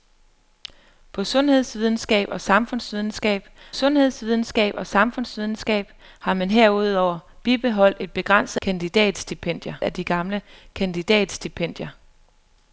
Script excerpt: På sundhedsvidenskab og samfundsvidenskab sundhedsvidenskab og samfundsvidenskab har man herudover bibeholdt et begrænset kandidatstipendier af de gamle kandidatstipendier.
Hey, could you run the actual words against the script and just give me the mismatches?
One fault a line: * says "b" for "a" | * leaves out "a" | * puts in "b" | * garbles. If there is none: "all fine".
all fine